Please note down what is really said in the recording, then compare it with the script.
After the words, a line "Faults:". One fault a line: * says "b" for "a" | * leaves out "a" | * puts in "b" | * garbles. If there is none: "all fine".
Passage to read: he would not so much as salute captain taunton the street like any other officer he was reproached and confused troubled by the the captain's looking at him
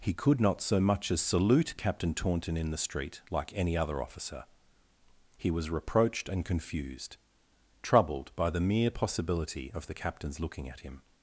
he could not so much as salute captain taunton in the street like any other officer he was reproached and confused troubled by the mere possibility of the captain's looking at him
Faults:
* says "could" for "would"
* puts in "in"
* puts in "mere possibility of"